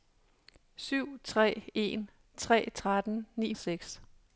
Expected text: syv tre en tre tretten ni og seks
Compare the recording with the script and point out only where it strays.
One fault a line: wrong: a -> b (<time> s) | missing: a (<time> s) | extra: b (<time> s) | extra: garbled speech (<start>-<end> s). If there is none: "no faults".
no faults